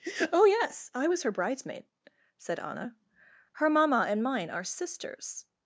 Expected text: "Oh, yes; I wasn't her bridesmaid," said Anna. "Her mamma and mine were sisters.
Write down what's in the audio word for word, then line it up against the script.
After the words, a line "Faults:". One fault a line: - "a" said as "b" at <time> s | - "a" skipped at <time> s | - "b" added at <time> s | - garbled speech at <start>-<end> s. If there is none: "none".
"Oh, yes; I was her bridesmaid," said Anna. "Her mamma and mine are sisters.
Faults:
- "wasn't" said as "was" at 1.1 s
- "were" said as "are" at 4.5 s